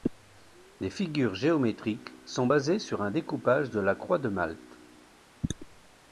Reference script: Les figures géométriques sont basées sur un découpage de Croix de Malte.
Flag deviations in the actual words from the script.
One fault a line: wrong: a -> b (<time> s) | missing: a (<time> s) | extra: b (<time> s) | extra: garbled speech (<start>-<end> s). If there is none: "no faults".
extra: la (3.8 s)